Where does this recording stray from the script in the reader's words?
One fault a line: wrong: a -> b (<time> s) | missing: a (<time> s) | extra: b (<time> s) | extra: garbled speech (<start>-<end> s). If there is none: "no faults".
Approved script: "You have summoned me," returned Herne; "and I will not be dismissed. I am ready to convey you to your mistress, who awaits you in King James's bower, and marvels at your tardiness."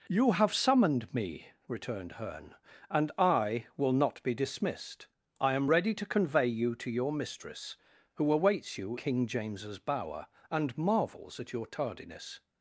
missing: in (9.0 s)